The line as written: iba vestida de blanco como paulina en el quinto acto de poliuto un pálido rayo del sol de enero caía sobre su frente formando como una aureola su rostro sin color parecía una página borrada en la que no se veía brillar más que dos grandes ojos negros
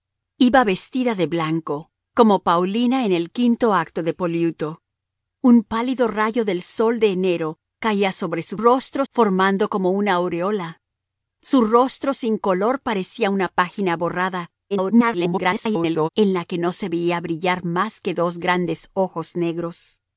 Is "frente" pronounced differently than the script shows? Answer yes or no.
yes